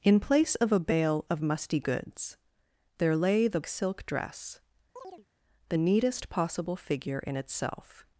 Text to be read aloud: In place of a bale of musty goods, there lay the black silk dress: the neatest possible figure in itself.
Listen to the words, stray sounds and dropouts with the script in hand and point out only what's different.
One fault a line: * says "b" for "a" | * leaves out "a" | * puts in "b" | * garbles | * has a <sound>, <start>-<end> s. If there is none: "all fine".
* leaves out "black"
* has a chirp, 5.0-5.3 s